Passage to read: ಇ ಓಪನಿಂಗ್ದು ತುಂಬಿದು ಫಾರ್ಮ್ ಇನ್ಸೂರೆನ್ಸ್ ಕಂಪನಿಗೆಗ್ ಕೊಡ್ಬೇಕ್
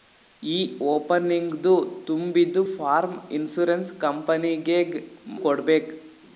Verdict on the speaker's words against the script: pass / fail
pass